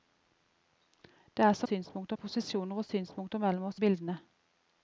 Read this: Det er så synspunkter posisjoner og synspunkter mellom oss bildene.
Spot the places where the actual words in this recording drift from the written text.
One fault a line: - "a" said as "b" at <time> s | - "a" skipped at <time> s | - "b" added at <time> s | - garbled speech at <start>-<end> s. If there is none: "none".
none